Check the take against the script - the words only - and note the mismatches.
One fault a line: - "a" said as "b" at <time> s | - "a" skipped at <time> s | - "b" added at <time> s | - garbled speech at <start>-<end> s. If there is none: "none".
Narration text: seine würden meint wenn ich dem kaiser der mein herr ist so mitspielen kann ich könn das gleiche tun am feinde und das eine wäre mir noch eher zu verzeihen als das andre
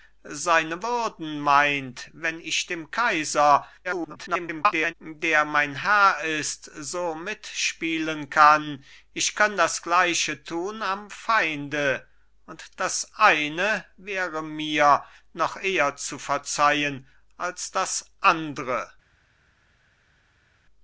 - garbled speech at 3.8-4.9 s